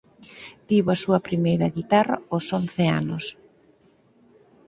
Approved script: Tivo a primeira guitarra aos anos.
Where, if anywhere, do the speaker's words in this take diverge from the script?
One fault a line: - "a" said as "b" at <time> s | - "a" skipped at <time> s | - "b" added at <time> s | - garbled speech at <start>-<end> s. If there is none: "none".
- "súa" added at 1.0 s
- "once" added at 2.6 s